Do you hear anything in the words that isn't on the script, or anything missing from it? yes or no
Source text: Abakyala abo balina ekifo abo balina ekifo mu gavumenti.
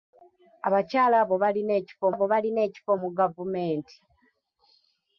no